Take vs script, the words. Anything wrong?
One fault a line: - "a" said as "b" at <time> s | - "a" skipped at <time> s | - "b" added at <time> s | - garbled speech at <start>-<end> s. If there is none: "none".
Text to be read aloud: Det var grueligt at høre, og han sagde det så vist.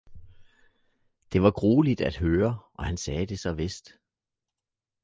none